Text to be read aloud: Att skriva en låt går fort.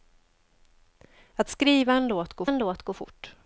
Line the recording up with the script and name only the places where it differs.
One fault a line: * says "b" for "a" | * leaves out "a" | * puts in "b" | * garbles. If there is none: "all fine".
* puts in "en låt går"